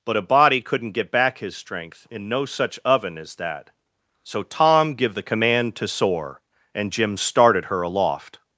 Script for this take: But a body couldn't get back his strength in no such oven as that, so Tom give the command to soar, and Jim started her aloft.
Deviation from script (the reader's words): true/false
false